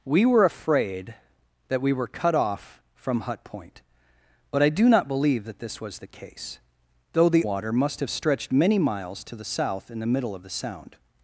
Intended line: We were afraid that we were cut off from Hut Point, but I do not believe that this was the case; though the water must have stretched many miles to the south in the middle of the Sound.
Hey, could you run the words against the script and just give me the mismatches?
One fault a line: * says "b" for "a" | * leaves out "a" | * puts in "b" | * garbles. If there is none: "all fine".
all fine